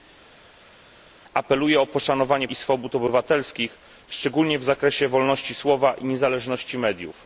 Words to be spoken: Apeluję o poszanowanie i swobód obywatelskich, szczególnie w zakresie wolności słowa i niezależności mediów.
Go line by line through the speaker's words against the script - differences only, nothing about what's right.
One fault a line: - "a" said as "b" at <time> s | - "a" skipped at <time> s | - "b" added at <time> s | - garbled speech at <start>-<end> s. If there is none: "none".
none